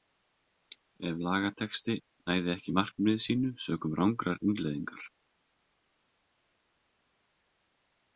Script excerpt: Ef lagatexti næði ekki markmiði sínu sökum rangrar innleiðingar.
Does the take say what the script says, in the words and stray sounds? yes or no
yes